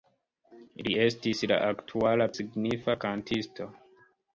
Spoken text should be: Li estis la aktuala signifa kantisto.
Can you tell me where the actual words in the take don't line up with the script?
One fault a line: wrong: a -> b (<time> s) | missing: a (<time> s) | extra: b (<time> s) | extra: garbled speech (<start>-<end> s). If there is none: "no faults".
no faults